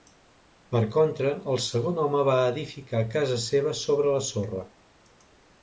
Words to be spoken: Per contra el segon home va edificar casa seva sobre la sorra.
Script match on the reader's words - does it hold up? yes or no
yes